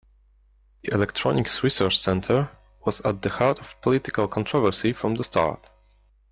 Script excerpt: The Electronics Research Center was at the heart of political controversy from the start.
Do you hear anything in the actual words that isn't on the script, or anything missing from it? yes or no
no